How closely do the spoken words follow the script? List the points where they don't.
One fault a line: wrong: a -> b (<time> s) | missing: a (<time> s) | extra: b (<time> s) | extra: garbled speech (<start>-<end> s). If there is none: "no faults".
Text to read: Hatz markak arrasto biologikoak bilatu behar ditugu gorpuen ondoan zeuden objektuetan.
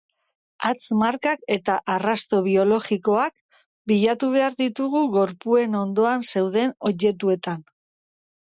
extra: eta (1.6 s)